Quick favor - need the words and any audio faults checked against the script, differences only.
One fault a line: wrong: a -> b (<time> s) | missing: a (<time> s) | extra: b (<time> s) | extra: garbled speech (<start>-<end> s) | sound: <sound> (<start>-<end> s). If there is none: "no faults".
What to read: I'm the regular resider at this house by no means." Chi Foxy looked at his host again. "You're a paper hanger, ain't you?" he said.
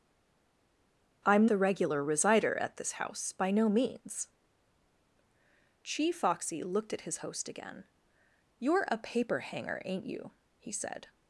no faults